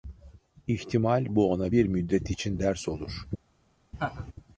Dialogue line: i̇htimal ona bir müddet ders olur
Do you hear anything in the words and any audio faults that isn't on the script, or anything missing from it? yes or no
yes